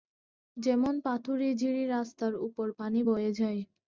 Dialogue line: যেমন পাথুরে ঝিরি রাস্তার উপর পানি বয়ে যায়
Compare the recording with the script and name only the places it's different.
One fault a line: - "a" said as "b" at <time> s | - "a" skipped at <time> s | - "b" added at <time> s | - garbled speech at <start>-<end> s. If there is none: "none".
none